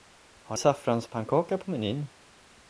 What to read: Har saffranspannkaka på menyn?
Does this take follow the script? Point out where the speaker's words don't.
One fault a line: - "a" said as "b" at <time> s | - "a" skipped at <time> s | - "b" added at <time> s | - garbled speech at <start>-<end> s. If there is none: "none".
none